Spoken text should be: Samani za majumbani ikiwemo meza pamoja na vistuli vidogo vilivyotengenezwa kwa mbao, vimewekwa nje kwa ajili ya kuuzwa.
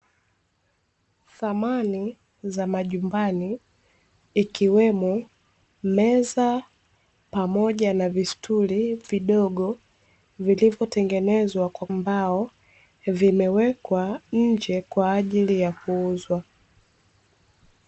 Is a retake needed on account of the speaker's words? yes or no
no